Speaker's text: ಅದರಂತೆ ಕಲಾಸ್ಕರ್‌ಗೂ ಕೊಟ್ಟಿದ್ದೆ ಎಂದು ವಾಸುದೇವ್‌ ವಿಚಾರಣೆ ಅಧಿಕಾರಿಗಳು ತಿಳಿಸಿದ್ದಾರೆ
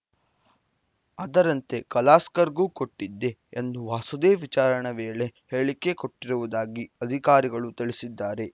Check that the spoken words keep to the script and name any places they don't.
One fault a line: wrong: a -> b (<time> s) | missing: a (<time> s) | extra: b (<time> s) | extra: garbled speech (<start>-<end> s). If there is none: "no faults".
extra: ವೇಳೆ ಹೇಳಿಕೆ ಕೊಟ್ಟಿರುವುದಾಗಿ (5.0 s)